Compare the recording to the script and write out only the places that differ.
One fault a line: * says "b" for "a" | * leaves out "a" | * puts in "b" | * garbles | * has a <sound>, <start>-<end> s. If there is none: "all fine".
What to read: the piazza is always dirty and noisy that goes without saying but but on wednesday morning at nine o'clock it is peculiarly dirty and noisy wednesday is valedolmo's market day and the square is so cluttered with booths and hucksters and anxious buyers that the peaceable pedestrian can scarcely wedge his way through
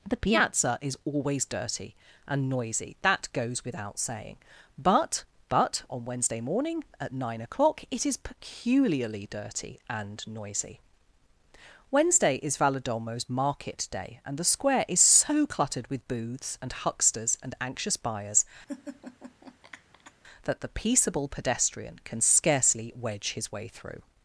* has a laugh, 18.7-20.1 s